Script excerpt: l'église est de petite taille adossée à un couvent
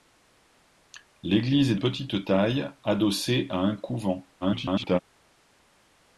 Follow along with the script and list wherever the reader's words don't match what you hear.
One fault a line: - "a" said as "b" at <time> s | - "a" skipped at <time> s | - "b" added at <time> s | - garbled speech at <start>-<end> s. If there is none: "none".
- "de" skipped at 1.8 s
- garbled speech at 4.4-5.0 s